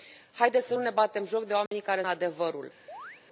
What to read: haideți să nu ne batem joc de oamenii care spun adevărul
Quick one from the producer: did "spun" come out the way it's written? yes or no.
no